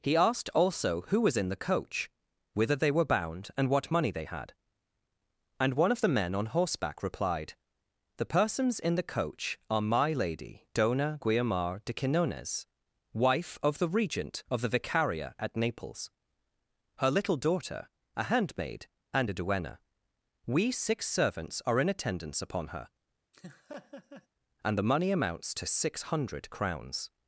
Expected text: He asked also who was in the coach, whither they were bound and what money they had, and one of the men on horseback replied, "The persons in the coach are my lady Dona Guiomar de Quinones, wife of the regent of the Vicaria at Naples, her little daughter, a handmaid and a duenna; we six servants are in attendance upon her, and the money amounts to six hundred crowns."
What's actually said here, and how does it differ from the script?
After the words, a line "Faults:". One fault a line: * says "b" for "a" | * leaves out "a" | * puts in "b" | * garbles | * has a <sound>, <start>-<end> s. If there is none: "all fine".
He asked also who was in the coach, whither they were bound and what money they had, and one of the men on horseback replied, "The persons in the coach are my lady Dona Guiomar de Quinones, wife of the regent of the Vicaria at Naples, her little daughter, a handmaid and a duenna; we six servants are in attendance upon her, and the money amounts to six hundred crowns."
Faults:
* has a laugh, 23.3-24.3 s